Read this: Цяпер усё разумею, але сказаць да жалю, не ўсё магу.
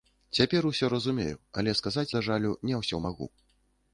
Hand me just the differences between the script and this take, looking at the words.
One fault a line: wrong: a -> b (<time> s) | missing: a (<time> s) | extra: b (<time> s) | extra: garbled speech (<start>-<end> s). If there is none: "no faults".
no faults